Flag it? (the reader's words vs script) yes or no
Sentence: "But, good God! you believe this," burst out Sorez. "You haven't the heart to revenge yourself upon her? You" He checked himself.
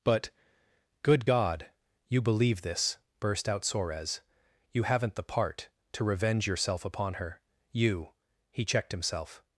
yes